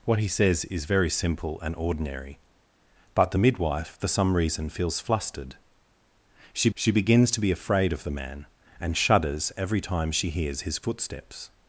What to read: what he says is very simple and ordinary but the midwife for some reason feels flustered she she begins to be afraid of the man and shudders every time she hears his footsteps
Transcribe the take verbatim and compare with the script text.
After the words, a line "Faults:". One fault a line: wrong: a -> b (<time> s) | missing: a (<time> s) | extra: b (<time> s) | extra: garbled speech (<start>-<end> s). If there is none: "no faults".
what he says is very simple and ordinary but the midwife for some reason feels flustered she she begins to be afraid of the man and shudders every time she hears his footsteps
Faults:
no faults